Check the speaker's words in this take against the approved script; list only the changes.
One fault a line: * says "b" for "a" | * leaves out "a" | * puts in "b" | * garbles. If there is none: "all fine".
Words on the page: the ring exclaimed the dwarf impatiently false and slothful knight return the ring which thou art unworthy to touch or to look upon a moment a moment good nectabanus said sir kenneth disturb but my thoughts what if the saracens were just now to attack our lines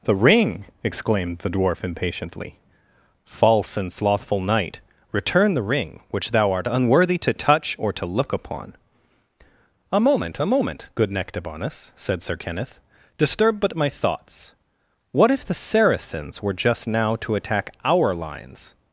all fine